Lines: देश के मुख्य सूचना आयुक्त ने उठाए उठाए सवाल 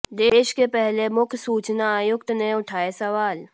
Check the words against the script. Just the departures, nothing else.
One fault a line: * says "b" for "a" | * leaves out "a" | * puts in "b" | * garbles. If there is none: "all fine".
* puts in "पहले"
* leaves out "उठाए"